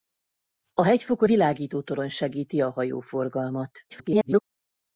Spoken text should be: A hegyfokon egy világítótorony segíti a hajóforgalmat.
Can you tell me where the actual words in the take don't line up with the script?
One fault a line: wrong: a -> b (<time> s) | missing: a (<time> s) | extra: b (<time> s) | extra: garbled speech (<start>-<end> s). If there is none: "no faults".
missing: egy (1.3 s)
extra: garbled speech (3.9-4.4 s)